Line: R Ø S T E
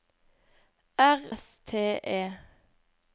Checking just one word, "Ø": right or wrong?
wrong